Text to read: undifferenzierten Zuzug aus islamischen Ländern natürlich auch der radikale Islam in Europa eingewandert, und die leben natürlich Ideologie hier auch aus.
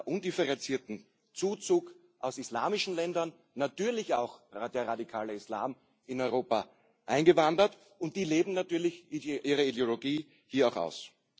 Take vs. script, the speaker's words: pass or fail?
fail